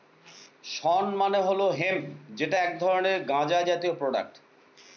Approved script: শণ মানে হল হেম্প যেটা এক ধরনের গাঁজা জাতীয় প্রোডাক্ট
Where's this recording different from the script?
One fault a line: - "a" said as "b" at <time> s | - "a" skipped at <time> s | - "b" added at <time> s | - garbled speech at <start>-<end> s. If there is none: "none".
none